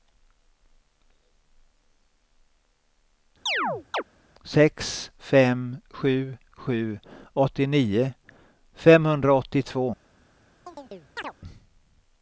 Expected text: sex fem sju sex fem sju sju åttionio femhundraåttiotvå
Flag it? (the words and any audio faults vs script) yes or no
yes